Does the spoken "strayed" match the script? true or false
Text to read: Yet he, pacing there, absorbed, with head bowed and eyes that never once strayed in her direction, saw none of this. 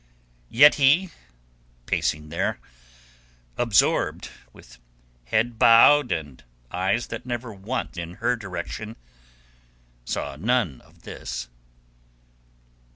false